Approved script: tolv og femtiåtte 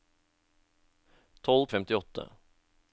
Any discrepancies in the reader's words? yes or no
no